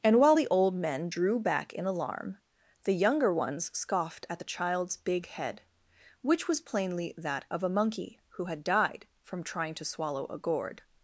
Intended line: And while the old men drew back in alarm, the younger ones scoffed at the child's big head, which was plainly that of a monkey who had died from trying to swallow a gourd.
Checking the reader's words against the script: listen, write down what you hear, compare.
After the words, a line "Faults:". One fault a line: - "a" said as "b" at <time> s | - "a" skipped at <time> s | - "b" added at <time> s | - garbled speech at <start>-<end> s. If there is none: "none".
And while the old men drew back in alarm, the younger ones scoffed at the child's big head, which was plainly that of a monkey who had died from trying to swallow a gourd.
Faults:
none